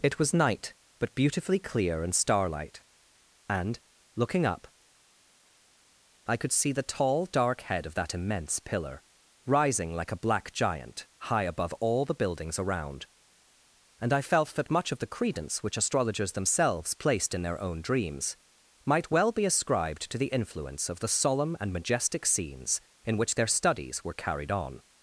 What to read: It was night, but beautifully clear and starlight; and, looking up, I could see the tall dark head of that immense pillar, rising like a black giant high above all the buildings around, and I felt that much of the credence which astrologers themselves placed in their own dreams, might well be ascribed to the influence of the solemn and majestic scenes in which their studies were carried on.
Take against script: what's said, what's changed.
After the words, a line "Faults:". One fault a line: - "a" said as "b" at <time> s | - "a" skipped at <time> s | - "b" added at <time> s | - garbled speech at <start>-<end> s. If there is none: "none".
It was night, but beautifully clear and starlight; and, looking up, I could see the tall dark head of that immense pillar, rising like a black giant high above all the buildings around, and I felt that much of the credence which astrologers themselves placed in their own dreams, might well be ascribed to the influence of the solemn and majestic scenes in which their studies were carried on.
Faults:
none